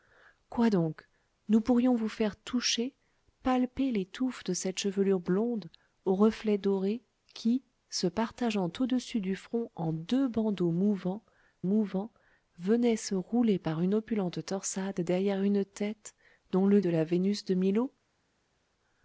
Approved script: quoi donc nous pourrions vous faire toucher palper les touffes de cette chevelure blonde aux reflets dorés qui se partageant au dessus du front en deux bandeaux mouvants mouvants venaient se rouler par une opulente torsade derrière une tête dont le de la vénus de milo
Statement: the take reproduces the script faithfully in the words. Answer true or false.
true